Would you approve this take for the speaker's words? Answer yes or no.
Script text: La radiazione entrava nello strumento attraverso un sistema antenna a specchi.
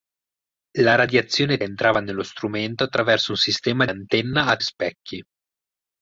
yes